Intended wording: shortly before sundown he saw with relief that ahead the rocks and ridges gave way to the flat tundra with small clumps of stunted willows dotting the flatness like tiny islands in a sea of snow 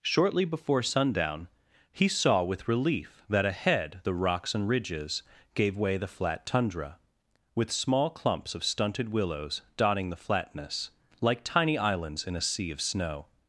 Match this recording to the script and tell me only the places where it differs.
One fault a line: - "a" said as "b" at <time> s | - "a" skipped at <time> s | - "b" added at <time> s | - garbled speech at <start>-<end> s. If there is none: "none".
- "to" skipped at 6.0 s